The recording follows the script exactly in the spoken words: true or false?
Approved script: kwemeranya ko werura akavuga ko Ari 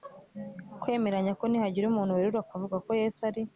false